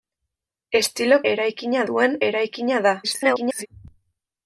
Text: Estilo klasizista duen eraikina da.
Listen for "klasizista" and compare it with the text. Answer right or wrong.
wrong